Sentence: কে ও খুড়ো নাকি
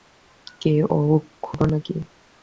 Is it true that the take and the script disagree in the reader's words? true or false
false